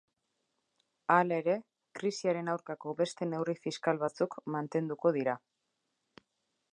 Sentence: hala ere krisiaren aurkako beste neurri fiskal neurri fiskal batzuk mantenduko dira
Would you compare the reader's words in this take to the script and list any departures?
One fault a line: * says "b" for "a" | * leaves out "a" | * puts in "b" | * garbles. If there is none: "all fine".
* leaves out "neurri fiskal"